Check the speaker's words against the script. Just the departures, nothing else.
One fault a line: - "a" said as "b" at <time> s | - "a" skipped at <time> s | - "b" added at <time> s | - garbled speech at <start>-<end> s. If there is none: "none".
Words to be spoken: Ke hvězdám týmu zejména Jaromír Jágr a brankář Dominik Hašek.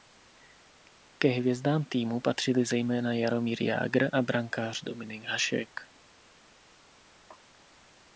- "patřili" added at 2.2 s